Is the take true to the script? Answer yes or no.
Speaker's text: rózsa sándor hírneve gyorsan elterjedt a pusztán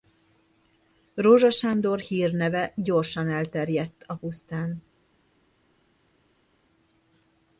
yes